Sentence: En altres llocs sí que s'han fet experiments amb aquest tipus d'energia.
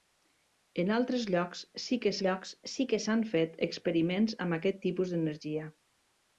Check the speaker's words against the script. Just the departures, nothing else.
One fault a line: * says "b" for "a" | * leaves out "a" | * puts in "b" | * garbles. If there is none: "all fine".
* puts in "llocs sí que"